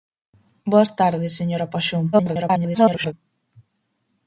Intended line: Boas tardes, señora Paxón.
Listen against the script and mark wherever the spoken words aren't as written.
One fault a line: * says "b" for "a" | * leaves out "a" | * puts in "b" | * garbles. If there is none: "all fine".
* garbles